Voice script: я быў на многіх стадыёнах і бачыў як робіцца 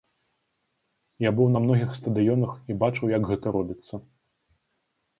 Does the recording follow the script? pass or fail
fail